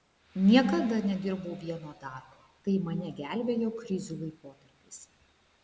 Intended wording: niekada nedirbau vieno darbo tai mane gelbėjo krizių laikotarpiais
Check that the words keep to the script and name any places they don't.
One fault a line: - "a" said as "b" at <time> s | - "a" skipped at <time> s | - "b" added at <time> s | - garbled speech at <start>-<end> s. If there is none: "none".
none